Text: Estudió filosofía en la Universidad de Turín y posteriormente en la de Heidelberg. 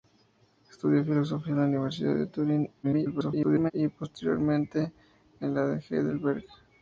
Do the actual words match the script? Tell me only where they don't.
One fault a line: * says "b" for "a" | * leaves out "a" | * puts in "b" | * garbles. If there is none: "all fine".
* garbles